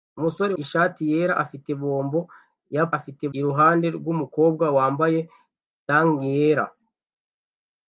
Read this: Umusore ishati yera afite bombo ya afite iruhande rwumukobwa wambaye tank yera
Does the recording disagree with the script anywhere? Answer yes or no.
no